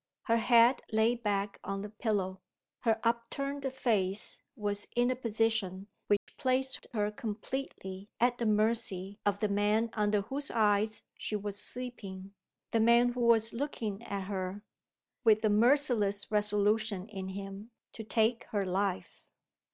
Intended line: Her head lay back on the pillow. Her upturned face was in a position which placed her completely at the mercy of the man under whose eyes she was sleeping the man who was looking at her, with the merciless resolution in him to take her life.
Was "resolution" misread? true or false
false